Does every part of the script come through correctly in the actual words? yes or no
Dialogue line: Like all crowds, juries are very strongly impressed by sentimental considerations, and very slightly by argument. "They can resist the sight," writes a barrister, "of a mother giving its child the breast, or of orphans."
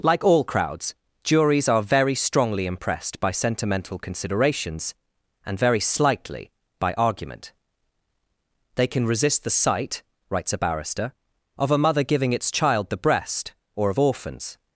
yes